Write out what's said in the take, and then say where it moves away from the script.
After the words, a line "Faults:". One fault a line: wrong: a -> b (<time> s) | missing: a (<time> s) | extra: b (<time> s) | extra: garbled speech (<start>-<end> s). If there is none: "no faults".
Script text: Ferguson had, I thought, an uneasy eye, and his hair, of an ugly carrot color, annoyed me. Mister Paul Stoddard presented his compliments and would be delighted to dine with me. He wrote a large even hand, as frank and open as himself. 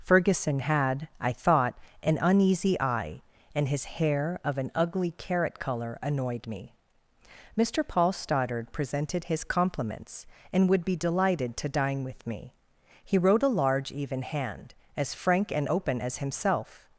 Ferguson had, I thought, an uneasy eye, and his hair, of an ugly carrot color, annoyed me. Mister Paul Stoddard presented his compliments and would be delighted to dine with me. He wrote a large even hand, as frank and open as himself.
Faults:
no faults